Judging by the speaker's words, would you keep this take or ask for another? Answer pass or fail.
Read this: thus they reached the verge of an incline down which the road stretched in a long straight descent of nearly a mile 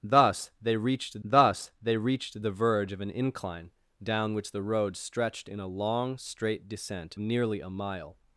fail